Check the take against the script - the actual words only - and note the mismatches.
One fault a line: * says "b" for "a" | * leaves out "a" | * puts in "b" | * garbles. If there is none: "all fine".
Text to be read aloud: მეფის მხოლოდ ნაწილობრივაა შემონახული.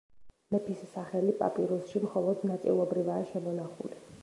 * puts in "სახელი პაპირუსში"